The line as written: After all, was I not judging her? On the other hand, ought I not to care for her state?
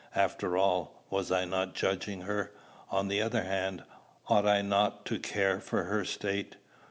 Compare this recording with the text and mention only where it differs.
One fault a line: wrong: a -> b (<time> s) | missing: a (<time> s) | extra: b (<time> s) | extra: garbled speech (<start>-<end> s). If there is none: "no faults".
no faults